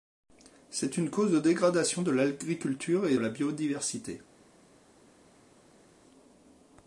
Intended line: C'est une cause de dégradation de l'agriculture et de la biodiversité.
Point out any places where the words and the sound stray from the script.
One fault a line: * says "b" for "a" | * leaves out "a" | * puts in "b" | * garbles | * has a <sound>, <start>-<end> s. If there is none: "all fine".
* leaves out "de"